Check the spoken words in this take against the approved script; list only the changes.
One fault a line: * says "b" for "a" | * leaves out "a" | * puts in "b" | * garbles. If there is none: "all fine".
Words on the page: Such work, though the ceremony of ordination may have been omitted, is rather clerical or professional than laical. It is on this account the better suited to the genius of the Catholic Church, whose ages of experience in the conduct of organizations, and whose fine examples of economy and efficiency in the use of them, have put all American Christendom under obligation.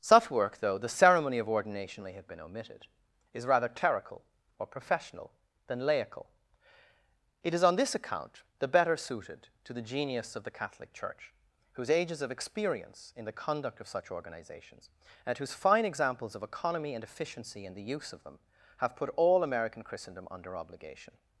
* puts in "such"